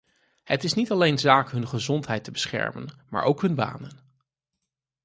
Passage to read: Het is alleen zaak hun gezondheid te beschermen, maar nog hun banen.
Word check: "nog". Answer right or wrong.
wrong